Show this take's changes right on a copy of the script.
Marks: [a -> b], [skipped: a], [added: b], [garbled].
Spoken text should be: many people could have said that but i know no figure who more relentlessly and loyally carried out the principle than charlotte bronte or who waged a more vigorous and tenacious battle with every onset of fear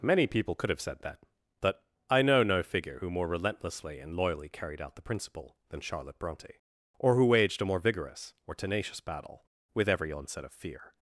many people could have said that but i know no figure who more relentlessly and loyally carried out the principle than charlotte bronte or who waged a more vigorous [and -> or] tenacious battle with every onset of fear